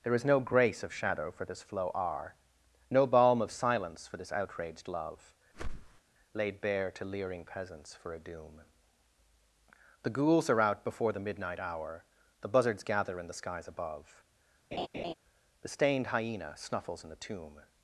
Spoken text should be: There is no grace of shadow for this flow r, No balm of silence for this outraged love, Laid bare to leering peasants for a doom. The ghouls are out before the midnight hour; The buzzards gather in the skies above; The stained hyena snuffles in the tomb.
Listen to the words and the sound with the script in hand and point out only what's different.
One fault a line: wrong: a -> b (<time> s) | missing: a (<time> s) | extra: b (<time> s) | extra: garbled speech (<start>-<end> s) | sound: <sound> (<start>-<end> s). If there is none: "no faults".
sound: whoosh (5.5-6.0 s)
sound: laugh (14.7-15.1 s)